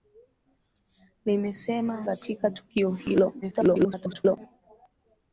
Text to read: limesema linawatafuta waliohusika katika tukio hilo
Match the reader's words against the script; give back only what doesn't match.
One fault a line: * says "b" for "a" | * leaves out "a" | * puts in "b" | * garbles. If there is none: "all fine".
* leaves out "linawatafuta waliohusika"
* garbles